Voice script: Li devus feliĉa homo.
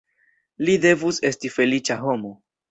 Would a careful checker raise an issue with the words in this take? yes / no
yes